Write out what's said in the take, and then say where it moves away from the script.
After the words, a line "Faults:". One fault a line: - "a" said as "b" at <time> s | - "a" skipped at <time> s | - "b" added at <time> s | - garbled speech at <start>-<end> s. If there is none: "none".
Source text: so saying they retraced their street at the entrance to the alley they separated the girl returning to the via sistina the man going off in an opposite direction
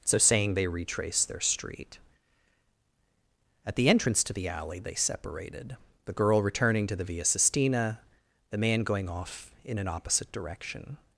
so saying they retraced their street at the entrance to the alley they separated the girl returning to the via sistina the man going off in an opposite direction
Faults:
none